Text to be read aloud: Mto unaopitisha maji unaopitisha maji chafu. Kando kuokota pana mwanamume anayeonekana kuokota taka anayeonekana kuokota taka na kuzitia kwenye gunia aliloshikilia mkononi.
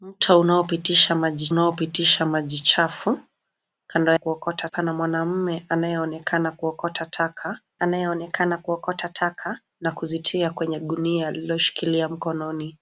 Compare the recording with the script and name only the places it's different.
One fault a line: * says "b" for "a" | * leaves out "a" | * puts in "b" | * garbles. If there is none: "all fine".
all fine